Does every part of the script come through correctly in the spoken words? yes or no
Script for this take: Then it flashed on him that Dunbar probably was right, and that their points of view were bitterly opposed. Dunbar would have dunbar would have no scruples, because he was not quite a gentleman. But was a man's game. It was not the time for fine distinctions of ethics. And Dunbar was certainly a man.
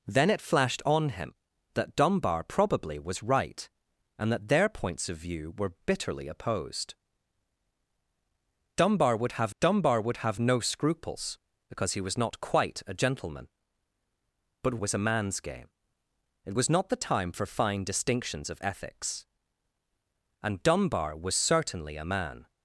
yes